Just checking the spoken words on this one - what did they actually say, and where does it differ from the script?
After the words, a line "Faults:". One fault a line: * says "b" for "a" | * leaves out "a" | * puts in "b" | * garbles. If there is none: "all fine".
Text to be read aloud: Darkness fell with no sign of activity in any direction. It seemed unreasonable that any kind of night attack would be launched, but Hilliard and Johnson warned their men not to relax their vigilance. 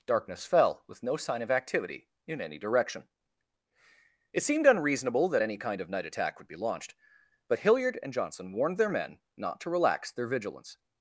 Darkness fell with no sign of activity in any direction. It seemed unreasonable that any kind of night attack would be launched, but Hilliard and Johnson warned their men not to relax their vigilance.
Faults:
all fine